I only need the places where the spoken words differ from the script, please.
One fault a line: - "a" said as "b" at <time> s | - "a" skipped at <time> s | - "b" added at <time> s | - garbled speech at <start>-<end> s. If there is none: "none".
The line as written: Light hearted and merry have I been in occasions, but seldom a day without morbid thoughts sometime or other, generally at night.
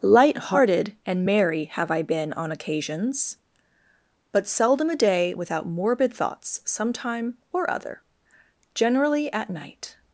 - "in" said as "on" at 2.3 s